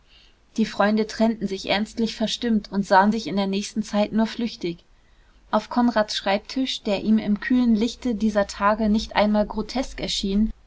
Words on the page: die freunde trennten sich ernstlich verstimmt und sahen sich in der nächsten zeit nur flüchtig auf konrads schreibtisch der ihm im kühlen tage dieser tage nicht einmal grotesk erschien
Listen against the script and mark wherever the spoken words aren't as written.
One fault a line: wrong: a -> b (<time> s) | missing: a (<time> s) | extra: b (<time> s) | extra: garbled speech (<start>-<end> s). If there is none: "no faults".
wrong: tage -> lichte (7.8 s)